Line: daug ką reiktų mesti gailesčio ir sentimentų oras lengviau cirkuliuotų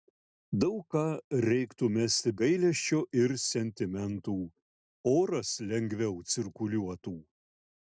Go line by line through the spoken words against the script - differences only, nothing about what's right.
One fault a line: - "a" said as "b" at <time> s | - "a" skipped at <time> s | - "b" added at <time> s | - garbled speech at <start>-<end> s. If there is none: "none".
none